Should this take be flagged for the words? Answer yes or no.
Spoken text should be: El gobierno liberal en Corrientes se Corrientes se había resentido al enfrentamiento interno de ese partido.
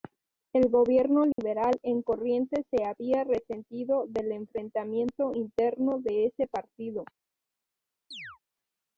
yes